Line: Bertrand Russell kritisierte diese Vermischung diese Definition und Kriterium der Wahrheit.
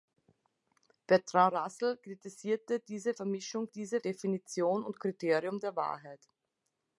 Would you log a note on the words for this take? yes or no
no